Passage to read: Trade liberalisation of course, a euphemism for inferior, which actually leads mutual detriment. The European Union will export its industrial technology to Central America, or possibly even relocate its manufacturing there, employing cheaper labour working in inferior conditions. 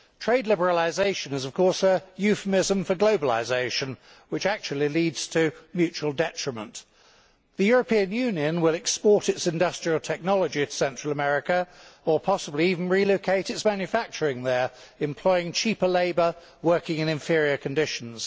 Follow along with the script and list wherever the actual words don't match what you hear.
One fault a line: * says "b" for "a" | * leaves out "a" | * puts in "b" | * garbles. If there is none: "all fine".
* puts in "is"
* says "globalisation" for "inferior"
* puts in "to"